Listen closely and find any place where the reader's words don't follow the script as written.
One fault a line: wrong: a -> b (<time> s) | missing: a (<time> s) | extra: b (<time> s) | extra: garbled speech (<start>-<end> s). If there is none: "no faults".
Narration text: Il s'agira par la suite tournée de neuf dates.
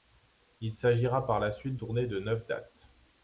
no faults